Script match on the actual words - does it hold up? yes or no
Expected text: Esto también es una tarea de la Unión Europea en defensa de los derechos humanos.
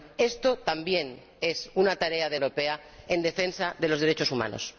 no